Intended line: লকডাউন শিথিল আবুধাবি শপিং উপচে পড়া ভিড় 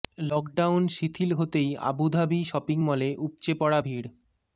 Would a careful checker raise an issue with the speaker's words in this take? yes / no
yes